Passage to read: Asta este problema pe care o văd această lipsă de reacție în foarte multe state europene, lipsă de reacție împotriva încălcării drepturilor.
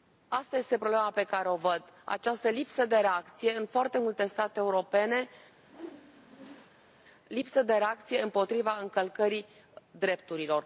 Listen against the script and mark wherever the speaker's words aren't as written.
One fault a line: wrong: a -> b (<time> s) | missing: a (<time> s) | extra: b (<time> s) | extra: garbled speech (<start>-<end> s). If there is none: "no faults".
no faults